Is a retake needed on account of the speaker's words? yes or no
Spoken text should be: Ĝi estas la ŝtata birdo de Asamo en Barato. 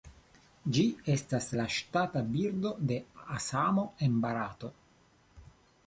no